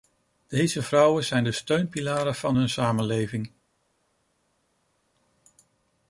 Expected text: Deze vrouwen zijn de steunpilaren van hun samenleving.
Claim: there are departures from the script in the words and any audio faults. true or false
false